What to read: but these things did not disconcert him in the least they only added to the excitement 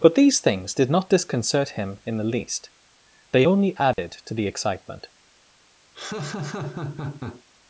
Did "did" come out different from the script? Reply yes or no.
no